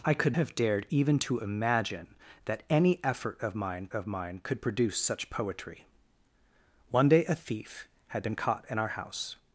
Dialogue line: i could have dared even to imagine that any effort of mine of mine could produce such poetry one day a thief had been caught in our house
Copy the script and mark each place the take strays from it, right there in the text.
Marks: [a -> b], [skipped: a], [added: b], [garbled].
i could have dared even to imagine that any effort of mine of mine could produce such poetry one day a thief had been caught in our house